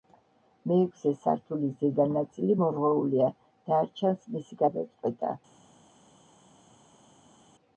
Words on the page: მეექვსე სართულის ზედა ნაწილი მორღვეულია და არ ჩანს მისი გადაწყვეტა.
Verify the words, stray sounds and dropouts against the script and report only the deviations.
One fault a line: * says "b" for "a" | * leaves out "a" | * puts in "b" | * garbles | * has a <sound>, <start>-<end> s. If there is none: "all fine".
all fine